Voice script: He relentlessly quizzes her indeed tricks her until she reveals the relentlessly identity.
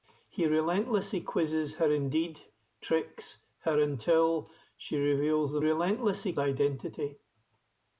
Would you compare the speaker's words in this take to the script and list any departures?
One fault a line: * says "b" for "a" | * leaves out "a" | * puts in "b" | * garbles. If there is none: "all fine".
all fine